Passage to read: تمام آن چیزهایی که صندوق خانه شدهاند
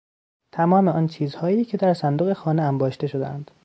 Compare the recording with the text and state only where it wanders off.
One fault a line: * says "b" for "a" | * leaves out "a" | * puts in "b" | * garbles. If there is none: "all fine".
* puts in "در"
* puts in "انباشته"